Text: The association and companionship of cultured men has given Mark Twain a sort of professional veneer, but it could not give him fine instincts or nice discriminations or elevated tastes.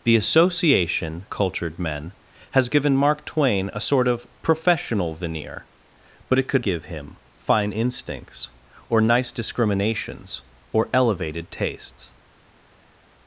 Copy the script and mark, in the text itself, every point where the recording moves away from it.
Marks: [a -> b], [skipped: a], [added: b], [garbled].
The association [skipped: and companionship of] cultured men has given Mark Twain a sort of professional veneer, but it could [skipped: not] give him fine instincts or nice discriminations or elevated tastes.